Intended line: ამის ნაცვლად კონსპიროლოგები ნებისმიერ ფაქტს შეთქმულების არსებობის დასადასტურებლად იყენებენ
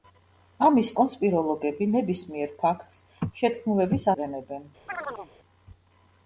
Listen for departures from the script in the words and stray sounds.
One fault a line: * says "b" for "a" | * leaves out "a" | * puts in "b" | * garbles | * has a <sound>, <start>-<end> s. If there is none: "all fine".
* leaves out "ნაცვლად"
* leaves out "არსებობის დასადასტურებლად"
* has a chirp, 4.9-5.3 s